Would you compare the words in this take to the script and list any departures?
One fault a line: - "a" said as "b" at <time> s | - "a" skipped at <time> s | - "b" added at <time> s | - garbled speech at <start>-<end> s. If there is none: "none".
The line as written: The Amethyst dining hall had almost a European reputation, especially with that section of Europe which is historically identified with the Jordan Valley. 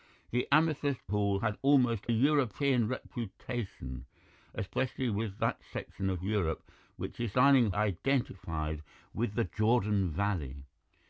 - "dining" skipped at 1.1 s
- "a" skipped at 2.1 s
- "historically" said as "dining" at 7.3 s